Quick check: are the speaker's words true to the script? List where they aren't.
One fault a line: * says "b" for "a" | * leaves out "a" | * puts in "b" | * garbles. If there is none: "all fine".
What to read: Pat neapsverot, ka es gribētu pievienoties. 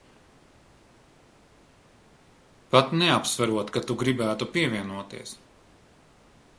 * says "tu" for "es"